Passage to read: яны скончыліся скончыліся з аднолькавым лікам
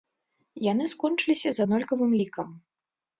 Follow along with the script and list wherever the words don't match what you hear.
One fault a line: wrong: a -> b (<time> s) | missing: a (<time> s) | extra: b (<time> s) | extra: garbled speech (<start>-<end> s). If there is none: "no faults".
missing: скончыліся (1.5 s)